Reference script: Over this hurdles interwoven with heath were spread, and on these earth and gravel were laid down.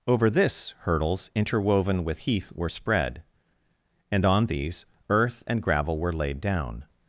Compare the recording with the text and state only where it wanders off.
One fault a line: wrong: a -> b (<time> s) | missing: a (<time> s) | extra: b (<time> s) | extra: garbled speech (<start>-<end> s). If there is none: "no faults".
no faults